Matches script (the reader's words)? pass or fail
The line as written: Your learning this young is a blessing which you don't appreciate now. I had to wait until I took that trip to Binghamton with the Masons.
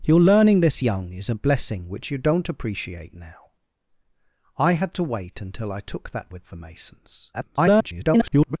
fail